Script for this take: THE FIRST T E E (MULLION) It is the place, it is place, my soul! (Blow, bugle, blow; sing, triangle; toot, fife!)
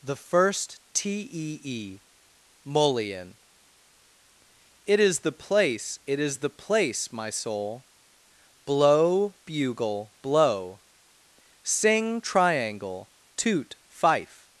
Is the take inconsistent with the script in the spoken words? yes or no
yes